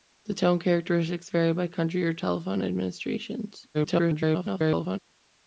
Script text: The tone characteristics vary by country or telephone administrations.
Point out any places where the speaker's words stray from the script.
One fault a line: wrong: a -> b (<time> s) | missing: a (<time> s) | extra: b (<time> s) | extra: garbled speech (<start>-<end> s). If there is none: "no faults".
extra: garbled speech (3.7-5.0 s)